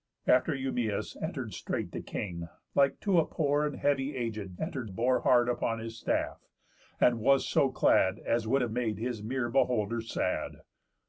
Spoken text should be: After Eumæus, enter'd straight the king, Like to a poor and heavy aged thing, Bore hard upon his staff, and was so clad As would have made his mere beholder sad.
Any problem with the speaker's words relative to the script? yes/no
yes